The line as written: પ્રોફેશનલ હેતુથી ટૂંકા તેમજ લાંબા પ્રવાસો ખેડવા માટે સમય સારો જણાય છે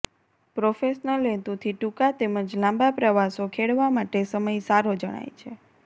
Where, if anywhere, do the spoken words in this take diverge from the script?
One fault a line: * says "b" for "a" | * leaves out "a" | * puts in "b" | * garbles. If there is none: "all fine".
all fine